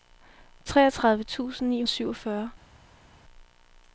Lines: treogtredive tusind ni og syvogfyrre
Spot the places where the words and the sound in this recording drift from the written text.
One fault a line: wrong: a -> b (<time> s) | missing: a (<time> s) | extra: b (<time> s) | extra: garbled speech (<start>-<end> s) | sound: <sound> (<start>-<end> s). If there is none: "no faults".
no faults